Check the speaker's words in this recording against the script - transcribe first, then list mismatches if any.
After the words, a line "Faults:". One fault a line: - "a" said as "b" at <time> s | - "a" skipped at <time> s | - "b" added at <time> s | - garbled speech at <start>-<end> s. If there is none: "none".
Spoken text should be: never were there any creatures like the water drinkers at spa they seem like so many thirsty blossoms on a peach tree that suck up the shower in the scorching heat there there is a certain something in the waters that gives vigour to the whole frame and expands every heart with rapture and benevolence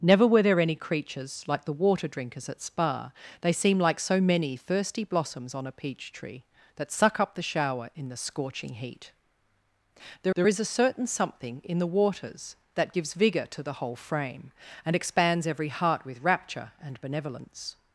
never were there any creatures like the water drinkers at spa they seem like so many thirsty blossoms on a peach tree that suck up the shower in the scorching heat there there is a certain something in the waters that gives vigour to the whole frame and expands every heart with rapture and benevolence
Faults:
none